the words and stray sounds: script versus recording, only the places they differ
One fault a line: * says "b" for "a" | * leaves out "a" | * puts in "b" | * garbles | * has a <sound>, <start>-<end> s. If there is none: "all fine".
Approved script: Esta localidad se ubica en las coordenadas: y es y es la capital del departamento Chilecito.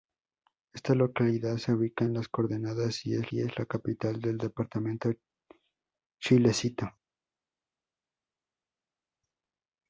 all fine